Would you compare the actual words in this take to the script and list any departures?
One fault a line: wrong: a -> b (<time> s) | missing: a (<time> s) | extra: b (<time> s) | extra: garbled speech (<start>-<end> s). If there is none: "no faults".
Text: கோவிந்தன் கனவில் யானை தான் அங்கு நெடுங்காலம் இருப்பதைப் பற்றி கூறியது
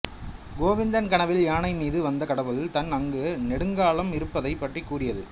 extra: மீது வந்த கடவுள் (1.7 s)